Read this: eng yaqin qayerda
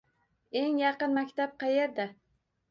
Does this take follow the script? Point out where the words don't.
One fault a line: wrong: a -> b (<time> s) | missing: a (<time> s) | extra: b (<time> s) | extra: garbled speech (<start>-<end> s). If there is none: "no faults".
extra: maktab (1.2 s)